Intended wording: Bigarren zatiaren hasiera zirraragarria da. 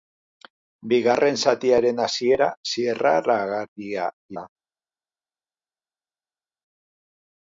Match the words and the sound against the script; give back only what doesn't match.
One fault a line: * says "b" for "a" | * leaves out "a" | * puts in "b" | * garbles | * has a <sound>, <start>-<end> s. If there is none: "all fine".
all fine